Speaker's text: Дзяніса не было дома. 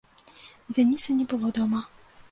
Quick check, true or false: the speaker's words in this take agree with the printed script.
true